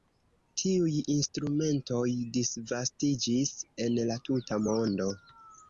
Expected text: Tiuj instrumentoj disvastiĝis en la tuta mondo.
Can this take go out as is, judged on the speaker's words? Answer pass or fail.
pass